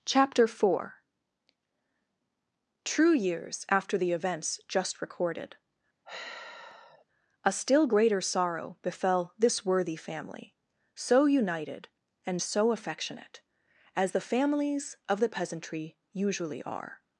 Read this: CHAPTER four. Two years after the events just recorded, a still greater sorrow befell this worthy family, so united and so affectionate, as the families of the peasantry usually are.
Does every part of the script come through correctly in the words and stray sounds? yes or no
no